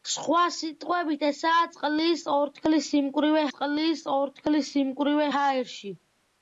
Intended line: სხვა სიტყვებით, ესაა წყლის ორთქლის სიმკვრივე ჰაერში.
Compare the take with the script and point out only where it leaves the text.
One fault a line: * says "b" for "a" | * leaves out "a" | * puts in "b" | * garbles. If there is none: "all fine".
* puts in "წყლის ორთქლის სიმკვრივე"